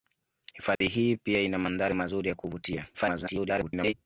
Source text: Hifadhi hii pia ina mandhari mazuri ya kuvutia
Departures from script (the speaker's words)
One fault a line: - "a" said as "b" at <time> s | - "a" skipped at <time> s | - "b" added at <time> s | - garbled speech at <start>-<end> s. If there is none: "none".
- garbled speech at 2.9-3.9 s